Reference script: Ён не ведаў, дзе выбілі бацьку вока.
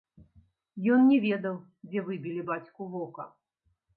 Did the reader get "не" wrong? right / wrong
right